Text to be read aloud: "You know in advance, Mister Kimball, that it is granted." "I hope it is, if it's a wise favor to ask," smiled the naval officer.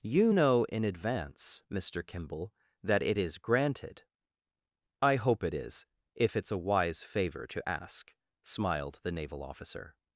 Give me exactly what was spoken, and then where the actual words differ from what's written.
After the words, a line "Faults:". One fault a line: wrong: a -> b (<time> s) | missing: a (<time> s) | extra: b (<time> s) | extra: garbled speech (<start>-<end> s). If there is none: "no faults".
"You know in advance, Mister Kimball, that it is granted." "I hope it is, if it's a wise favor to ask," smiled the naval officer.
Faults:
no faults